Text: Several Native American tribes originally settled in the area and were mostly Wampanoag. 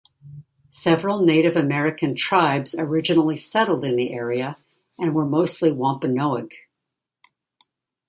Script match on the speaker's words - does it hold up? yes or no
yes